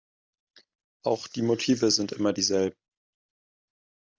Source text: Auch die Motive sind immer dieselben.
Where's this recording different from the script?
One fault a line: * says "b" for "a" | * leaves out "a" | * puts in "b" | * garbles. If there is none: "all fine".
all fine